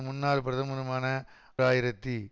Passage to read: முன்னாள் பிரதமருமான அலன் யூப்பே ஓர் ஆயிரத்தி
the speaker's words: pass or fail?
fail